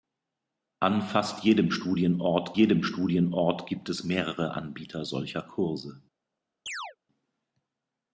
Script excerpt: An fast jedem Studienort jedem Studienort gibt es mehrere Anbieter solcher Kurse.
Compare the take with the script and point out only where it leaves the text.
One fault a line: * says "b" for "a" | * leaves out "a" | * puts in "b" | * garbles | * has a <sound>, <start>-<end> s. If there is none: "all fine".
* has a chirp, 6.7-7.0 s